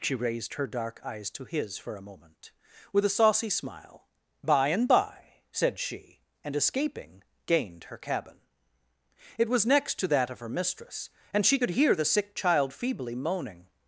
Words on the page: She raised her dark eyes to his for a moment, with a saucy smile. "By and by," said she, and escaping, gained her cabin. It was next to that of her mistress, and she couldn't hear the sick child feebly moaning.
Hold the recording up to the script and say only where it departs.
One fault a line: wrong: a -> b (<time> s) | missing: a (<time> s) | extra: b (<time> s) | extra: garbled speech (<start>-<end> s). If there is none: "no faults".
wrong: couldn't -> could (11.6 s)